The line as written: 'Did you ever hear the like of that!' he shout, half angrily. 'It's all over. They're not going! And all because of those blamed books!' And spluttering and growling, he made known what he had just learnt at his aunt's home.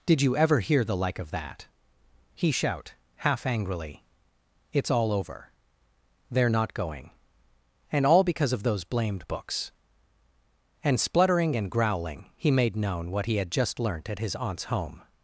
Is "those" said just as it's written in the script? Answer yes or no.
yes